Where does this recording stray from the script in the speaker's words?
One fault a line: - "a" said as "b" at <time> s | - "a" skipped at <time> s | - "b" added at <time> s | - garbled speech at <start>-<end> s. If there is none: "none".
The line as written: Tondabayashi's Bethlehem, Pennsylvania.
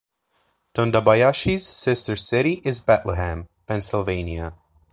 - "sister city is" added at 1.7 s